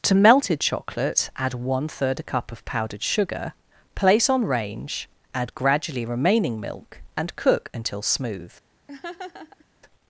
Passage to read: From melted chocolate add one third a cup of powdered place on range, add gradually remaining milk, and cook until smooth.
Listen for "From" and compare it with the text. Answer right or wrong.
wrong